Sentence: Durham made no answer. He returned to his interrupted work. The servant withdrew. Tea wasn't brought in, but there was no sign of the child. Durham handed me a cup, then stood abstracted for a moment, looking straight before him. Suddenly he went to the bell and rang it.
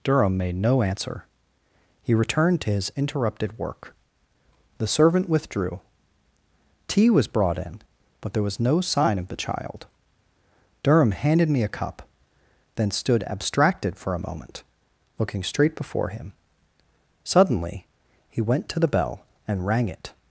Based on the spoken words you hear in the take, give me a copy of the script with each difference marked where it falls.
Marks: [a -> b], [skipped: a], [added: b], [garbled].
Durham made no answer. He returned to his interrupted work. The servant withdrew. Tea [wasn't -> was] brought in, but there was no sign of the child. Durham handed me a cup, then stood abstracted for a moment, looking straight before him. Suddenly he went to the bell and rang it.